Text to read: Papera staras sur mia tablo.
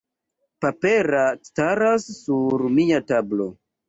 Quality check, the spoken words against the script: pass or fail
pass